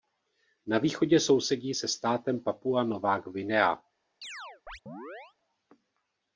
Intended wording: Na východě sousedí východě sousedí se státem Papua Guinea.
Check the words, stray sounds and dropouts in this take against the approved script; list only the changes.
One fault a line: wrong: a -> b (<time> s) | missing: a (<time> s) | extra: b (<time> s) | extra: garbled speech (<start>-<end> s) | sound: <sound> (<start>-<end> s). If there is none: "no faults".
missing: východě sousedí (1.8 s)
extra: Nová (2.8 s)
sound: chirp (4.2-5.4 s)